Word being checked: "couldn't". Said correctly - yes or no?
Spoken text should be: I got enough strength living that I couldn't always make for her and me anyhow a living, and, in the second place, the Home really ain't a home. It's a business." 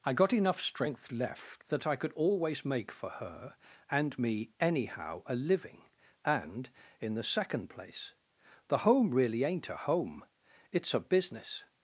no